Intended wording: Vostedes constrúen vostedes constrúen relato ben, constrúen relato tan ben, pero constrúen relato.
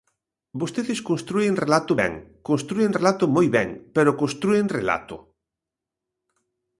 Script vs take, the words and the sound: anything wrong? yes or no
yes